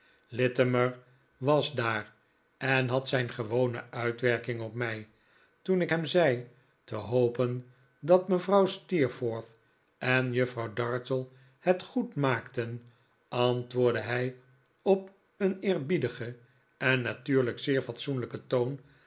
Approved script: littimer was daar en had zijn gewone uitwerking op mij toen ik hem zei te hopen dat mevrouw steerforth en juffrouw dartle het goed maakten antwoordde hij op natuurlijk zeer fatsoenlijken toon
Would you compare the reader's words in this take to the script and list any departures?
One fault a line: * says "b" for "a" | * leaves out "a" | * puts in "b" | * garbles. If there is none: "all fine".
* puts in "een eerbiedigen en"